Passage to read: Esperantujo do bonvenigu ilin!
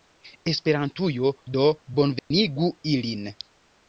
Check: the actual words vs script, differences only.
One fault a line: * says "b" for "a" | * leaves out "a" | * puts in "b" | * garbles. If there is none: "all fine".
all fine